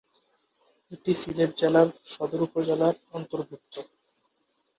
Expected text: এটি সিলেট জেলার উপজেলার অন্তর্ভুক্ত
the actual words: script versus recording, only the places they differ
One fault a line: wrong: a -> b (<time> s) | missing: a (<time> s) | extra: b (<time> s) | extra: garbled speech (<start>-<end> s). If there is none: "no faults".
extra: সদর (2.0 s)